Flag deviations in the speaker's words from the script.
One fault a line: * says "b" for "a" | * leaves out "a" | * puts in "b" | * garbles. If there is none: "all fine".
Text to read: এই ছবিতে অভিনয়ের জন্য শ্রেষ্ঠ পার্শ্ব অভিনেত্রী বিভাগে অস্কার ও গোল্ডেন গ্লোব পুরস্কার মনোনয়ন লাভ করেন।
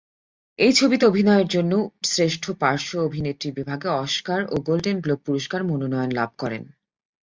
all fine